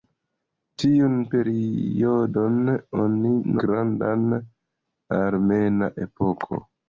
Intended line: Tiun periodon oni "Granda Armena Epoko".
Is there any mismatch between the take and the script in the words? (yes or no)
no